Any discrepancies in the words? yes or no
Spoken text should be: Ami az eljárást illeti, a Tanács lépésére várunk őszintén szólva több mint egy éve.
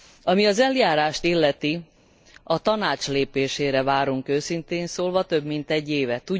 no